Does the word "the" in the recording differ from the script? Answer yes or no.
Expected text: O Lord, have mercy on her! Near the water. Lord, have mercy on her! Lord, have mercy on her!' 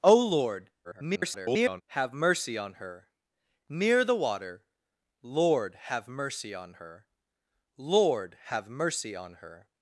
no